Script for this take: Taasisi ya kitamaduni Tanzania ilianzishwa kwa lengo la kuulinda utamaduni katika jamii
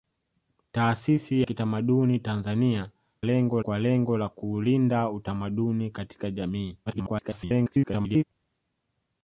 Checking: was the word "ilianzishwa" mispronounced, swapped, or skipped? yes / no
yes